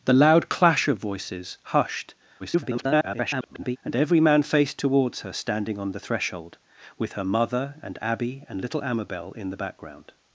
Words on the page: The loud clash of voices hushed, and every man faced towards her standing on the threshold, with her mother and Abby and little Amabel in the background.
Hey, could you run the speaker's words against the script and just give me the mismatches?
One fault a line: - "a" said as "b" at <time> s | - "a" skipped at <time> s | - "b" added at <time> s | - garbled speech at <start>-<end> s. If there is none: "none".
- garbled speech at 2.4-3.8 s